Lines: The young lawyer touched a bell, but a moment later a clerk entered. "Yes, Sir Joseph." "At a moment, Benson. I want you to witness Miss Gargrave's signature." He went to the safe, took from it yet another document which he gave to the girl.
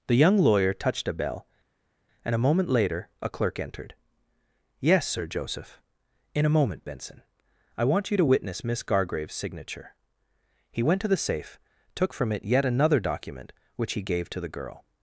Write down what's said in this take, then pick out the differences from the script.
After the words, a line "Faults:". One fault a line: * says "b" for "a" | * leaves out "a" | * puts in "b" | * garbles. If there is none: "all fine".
The young lawyer touched a bell, and a moment later a clerk entered. "Yes, Sir Joseph." "In a moment, Benson. I want you to witness Miss Gargrave's signature." He went to the safe, took from it yet another document which he gave to the girl.
Faults:
* says "and" for "but"
* says "In" for "At"